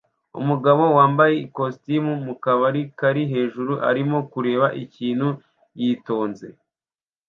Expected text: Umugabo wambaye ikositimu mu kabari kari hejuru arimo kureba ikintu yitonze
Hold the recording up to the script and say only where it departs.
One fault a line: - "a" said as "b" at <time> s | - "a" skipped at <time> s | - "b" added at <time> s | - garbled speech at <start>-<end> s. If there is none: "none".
none